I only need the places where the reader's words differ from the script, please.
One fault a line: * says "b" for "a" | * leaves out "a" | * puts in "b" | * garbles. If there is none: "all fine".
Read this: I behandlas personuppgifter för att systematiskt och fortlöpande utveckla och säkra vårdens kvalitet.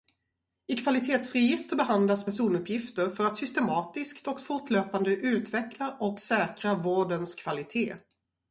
* puts in "kvalitetsregister"